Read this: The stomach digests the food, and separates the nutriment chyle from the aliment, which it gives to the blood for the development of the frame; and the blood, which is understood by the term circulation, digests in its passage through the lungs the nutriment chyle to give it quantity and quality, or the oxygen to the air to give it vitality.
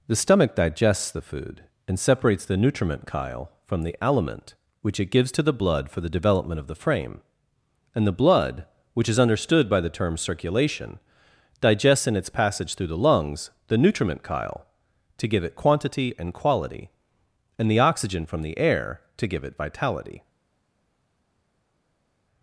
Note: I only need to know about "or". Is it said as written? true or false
false